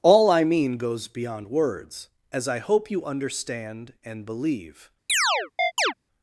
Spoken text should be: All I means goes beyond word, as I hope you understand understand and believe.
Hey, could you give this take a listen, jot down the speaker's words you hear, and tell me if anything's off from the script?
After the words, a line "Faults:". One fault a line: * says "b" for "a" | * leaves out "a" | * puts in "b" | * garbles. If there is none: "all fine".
All I mean goes beyond words, as I hope you understand and believe.
Faults:
* says "mean" for "means"
* says "words" for "word"
* leaves out "understand"